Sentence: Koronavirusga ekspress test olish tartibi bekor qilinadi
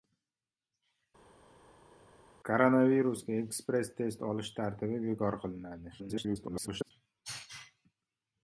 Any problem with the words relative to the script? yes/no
yes